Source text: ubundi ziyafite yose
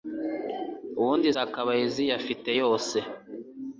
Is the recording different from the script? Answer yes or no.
yes